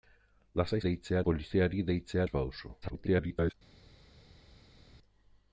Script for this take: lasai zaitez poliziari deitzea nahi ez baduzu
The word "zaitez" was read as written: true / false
false